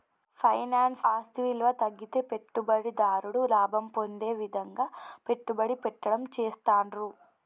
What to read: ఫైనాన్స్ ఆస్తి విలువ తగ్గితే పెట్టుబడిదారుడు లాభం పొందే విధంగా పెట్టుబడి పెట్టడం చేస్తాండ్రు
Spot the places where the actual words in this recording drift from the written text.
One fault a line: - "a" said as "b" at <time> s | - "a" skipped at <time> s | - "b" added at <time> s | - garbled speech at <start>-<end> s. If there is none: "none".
none